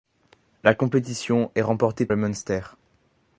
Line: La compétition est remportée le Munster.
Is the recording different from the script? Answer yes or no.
no